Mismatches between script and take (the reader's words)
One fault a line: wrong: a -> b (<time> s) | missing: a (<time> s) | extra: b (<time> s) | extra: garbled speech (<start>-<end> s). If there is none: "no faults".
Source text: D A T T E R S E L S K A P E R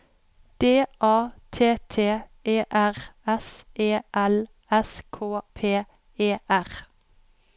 missing: A (5.4 s)